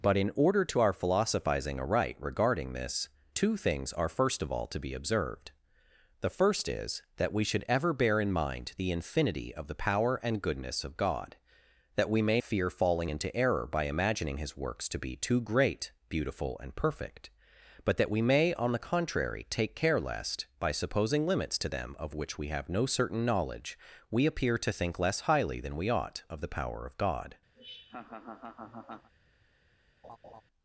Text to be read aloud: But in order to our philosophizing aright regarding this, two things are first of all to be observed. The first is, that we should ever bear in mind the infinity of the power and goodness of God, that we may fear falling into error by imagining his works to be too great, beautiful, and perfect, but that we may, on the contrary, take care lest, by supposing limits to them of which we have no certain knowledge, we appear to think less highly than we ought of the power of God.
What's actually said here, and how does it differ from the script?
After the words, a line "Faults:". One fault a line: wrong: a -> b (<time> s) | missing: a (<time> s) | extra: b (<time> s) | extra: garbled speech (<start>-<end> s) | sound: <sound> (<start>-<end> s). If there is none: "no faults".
But in order to our philosophizing aright regarding this, two things are first of all to be observed. The first is, that we should ever bear in mind the infinity of the power and goodness of God, that we may fear falling into error by imagining his works to be too great, beautiful, and perfect, but that we may, on the contrary, take care lest, by supposing limits to them of which we have no certain knowledge, we appear to think less highly than we ought of the power of God.
Faults:
sound: laugh (27.5-29.1 s)
sound: laugh (30.0-30.4 s)